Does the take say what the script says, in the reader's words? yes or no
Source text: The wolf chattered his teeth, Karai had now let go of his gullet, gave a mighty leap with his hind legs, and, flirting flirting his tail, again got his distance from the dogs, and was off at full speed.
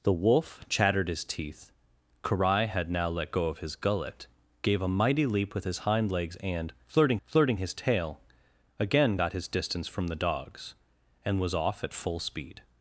yes